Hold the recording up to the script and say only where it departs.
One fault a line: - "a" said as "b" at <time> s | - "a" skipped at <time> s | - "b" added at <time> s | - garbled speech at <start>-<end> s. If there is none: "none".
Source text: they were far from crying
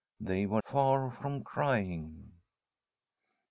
none